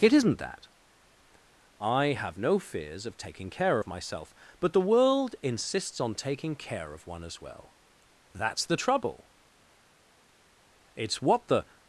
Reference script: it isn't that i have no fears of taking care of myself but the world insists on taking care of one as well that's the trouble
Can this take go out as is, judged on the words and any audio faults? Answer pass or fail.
fail